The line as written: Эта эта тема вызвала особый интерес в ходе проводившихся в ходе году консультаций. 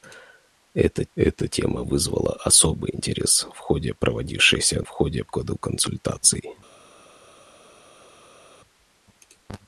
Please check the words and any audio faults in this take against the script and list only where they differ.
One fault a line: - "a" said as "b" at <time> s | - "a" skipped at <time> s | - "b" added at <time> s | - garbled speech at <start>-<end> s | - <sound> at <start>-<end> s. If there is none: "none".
none